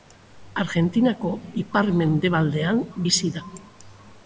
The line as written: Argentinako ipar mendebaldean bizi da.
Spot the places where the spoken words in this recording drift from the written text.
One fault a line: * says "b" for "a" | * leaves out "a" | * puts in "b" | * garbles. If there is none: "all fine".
all fine